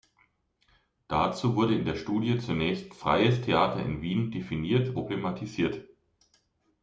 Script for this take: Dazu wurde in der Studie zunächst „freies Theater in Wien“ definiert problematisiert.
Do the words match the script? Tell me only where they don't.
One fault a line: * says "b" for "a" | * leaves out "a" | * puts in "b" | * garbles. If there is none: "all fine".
all fine